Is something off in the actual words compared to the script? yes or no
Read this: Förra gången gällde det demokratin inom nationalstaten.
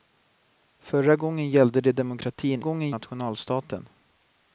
yes